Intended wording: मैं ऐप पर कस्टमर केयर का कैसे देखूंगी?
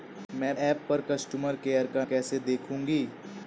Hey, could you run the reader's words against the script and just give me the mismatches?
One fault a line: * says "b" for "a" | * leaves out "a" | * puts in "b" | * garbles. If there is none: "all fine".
all fine